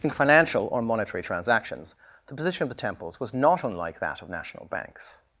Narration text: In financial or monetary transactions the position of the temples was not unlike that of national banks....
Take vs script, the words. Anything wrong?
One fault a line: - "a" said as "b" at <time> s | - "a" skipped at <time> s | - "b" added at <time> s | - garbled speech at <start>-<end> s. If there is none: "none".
none